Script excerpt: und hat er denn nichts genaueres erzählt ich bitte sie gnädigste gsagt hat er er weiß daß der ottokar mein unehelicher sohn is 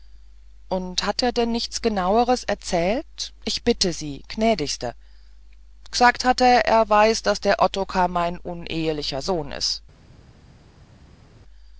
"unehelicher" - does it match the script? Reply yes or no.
yes